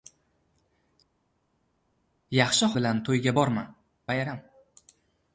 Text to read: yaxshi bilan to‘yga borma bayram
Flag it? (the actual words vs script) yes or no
no